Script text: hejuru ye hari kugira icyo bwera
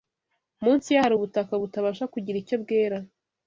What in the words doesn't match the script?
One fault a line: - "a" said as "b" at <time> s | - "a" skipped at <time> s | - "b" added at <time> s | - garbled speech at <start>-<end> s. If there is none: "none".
- "hejuru" said as "munsi" at 0.6 s
- "ubutaka butabasha" added at 1.1 s